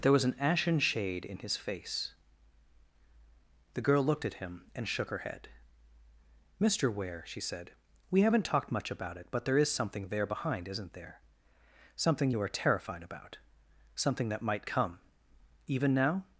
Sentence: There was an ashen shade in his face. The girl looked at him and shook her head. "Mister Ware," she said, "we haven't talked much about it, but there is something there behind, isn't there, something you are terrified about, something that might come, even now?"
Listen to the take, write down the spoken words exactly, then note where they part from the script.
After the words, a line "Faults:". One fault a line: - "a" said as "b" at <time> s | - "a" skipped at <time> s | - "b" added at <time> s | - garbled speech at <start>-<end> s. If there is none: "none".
There was an ashen shade in his face. The girl looked at him and shook her head. "Mister Ware," she said, "we haven't talked much about it, but there is something there behind, isn't there, something you are terrified about, something that might come, even now?"
Faults:
none